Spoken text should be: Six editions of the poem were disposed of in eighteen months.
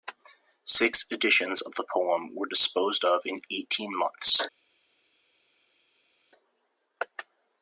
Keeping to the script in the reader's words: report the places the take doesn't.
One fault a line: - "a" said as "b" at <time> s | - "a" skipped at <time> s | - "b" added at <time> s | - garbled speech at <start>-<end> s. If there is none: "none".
none